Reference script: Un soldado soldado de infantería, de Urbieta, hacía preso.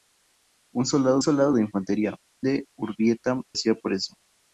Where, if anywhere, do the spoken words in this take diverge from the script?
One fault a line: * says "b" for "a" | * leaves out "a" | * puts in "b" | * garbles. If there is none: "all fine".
all fine